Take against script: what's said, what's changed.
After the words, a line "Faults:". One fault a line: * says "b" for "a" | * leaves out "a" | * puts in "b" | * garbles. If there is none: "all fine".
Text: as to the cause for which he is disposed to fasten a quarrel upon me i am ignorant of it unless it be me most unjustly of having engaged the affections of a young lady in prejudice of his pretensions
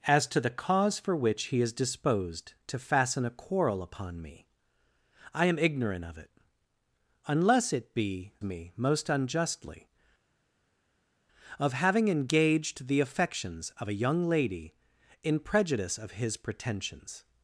as to the cause for which he is disposed to fasten a quarrel upon me i am ignorant of it unless it be me most unjustly of having engaged the affections of a young lady in prejudice of his pretensions
Faults:
all fine